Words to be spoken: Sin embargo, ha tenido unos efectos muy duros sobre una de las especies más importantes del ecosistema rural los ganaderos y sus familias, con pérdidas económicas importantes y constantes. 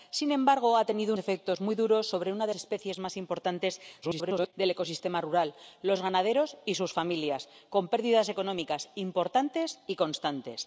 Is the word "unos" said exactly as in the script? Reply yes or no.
no